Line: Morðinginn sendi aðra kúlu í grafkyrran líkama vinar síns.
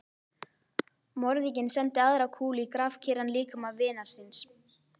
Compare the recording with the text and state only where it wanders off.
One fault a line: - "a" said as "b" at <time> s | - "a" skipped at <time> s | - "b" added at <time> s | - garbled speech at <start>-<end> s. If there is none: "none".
none